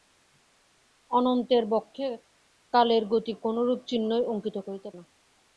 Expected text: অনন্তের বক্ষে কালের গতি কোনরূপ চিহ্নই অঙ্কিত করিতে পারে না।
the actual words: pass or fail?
fail